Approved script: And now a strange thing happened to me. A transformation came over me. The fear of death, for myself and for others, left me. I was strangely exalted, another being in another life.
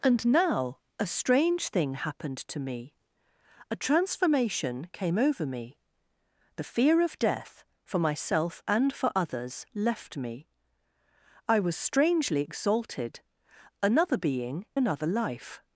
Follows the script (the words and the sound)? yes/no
no